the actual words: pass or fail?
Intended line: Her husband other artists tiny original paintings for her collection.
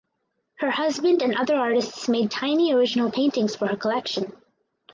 fail